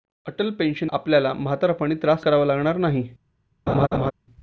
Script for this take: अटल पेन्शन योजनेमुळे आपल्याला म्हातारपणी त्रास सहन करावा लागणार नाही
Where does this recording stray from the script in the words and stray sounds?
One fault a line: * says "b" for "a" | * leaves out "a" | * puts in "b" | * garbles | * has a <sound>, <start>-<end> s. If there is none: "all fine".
* leaves out "योजनेमुळे"
* leaves out "सहन"
* has a laugh, 3.7-4.1 s